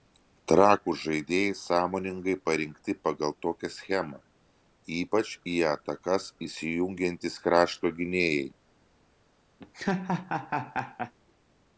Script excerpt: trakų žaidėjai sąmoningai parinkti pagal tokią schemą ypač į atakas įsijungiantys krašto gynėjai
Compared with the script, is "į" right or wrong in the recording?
right